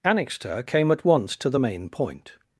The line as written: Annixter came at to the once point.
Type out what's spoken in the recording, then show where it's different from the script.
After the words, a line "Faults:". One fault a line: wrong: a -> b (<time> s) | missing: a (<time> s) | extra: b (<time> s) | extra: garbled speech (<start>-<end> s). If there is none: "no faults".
Annixter came at once to the main point.
Faults:
extra: once (1.0 s)
wrong: once -> main (1.6 s)